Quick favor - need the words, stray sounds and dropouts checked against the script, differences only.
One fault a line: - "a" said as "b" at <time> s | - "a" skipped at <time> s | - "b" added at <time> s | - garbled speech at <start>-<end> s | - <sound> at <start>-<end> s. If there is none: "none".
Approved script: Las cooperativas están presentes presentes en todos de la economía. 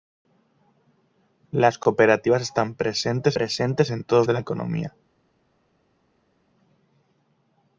none